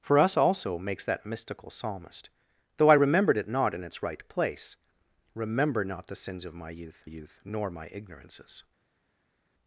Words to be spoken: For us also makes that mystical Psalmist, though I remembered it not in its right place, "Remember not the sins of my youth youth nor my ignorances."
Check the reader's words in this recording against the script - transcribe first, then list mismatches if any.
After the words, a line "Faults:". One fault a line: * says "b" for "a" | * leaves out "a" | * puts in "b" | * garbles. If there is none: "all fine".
For us also makes that mystical Psalmist, though I remembered it not in its right place, "Remember not the sins of my youth youth nor my ignorances."
Faults:
all fine